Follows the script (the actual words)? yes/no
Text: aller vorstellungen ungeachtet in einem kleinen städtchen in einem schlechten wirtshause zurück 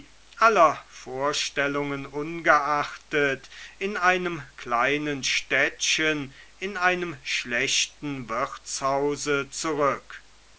yes